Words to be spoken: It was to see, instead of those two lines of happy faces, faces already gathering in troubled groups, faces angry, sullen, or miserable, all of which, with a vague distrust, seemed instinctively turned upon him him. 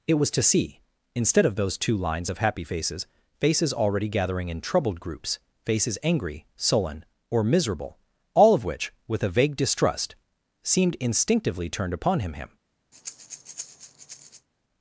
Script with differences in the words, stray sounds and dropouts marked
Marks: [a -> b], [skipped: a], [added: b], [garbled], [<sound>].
It was to see, instead of those two lines of happy faces, faces already gathering in troubled groups, faces angry, sullen, or miserable, all of which, with a vague distrust, seemed instinctively turned upon him him. [breath]